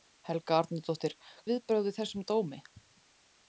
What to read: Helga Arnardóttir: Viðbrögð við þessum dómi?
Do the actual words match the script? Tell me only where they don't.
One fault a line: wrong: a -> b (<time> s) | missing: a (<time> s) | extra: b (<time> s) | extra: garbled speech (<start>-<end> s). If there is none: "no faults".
no faults